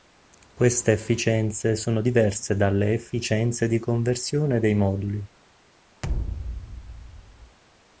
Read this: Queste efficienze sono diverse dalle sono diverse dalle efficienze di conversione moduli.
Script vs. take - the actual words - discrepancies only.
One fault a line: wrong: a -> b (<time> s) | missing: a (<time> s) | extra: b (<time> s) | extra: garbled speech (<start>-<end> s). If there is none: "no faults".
missing: sono diverse dalle (2.9 s)
extra: dei (4.6 s)